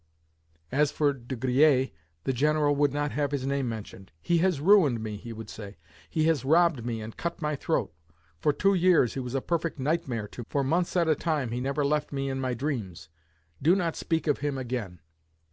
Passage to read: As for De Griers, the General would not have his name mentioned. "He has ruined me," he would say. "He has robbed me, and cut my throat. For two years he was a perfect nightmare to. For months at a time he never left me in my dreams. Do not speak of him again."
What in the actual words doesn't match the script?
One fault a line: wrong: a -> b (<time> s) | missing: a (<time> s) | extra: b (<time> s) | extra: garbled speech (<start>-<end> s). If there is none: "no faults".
no faults